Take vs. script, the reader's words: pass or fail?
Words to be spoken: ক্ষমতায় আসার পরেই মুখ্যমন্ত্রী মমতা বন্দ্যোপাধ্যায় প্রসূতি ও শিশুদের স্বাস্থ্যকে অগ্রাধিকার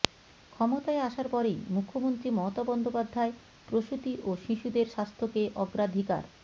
pass